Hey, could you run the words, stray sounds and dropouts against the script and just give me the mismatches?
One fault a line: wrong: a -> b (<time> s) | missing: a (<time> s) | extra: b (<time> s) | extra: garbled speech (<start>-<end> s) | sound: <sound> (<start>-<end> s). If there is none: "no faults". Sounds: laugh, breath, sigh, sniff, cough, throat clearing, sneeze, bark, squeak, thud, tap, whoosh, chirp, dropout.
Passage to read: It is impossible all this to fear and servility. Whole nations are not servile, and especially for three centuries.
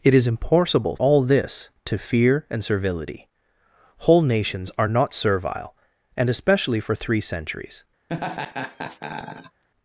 sound: laugh (8.1-9.6 s)